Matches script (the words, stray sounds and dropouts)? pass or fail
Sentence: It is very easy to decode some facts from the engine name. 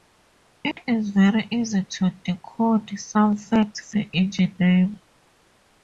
fail